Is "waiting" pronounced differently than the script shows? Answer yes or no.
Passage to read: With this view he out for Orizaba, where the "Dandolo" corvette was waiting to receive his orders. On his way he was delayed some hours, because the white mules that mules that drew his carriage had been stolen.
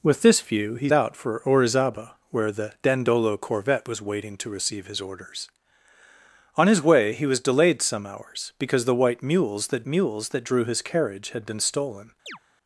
no